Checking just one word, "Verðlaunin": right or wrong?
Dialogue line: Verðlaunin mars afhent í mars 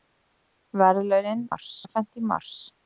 right